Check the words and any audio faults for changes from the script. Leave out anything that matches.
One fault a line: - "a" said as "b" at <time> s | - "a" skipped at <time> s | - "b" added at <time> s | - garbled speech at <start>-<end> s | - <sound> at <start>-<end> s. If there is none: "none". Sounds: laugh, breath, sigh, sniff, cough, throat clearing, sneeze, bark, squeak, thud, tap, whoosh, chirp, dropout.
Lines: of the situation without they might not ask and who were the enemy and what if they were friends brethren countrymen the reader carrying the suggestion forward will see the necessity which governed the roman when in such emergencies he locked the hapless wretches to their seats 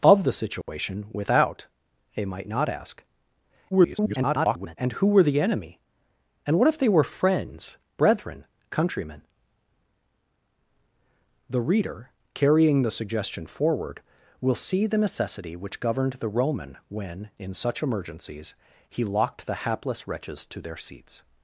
- dropout at 0.6-0.7 s
- garbled speech at 3.7-4.8 s